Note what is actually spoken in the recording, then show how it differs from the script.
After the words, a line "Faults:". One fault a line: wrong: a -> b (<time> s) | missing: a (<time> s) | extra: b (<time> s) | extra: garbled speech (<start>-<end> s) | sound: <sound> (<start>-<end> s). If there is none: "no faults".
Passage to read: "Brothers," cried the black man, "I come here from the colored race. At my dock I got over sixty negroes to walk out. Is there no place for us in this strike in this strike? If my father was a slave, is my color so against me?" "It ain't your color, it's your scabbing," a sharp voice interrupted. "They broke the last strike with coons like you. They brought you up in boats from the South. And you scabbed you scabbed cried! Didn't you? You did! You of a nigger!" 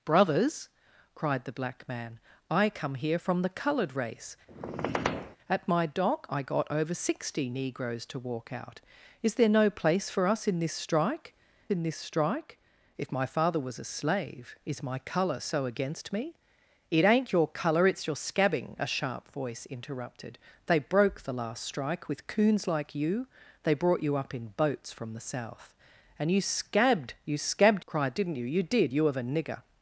"Brothers," cried the black man, "I come here from the colored race. At my dock I got over sixty negroes to walk out. Is there no place for us in this strike in this strike? If my father was a slave, is my color so against me?" "It ain't your color, it's your scabbing," a sharp voice interrupted. "They broke the last strike with coons like you. They brought you up in boats from the South. And you scabbed you scabbed cried! Didn't you? You did! You of a nigger!"
Faults:
sound: squeak (4.5-5.4 s)